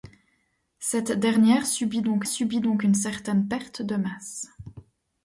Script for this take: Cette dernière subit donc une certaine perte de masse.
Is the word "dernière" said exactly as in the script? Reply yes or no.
yes